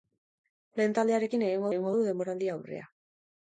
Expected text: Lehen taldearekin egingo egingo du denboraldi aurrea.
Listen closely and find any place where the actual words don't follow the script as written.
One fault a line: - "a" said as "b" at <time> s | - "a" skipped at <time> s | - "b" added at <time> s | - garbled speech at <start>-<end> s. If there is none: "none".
none